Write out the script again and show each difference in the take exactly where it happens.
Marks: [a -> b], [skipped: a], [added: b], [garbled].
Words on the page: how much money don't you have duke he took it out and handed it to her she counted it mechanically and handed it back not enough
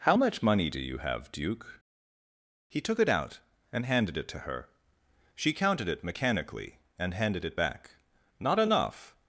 how much money [don't -> do] you have duke he took it out and handed it to her she counted it mechanically and handed it back not enough